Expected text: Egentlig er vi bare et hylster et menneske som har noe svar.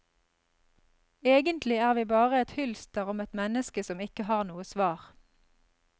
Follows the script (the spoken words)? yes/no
no